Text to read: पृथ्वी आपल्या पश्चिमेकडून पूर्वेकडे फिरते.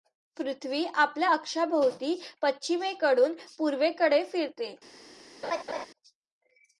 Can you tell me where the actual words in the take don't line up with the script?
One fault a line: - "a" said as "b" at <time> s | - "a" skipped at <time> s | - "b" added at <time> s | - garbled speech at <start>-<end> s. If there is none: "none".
- "अक्षाभोवती" added at 1.3 s